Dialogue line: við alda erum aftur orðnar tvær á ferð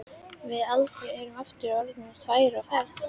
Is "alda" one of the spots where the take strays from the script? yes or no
no